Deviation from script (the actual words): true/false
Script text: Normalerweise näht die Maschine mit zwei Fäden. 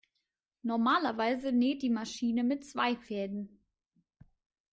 false